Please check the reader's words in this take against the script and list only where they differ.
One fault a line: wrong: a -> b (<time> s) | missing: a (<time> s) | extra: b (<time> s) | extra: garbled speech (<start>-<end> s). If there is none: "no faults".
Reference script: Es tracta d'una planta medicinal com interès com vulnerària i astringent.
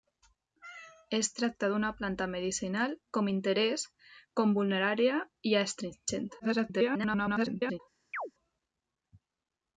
extra: garbled speech (6.4-7.8 s)